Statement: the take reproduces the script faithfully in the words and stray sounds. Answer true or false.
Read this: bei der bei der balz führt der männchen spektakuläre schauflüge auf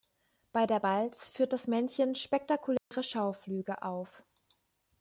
false